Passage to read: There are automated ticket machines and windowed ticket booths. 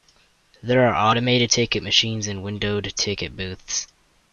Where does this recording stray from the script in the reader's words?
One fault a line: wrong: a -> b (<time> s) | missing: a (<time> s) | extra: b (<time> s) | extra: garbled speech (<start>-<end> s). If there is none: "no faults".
no faults